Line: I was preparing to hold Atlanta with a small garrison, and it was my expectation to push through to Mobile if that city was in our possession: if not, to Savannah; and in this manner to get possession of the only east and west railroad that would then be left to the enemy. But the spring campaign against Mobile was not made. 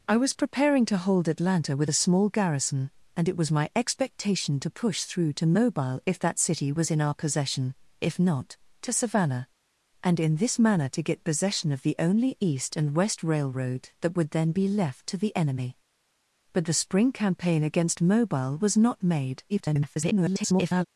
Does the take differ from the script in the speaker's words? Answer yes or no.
yes